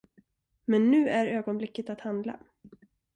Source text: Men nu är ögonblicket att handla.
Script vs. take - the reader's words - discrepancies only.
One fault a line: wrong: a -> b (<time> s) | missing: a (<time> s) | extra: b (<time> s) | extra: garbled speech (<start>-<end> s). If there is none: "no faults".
no faults